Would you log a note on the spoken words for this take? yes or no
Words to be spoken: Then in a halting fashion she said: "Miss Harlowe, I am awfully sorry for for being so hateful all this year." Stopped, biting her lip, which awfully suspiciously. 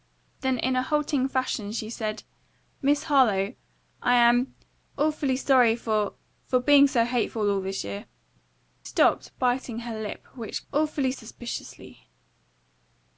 no